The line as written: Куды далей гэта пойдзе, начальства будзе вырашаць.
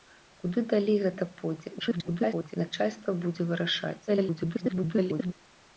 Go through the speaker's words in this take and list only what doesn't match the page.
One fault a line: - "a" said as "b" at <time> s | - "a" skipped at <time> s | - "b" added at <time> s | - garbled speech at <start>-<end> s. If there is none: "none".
- garbled speech at 1.8-2.6 s
- garbled speech at 4.1-5.3 s